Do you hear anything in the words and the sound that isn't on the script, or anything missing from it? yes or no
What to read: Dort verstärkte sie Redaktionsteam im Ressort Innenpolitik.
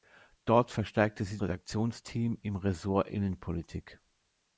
no